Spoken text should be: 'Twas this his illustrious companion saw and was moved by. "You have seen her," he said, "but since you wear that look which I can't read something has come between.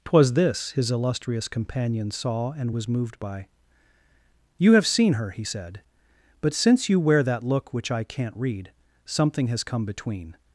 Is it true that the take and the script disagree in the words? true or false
false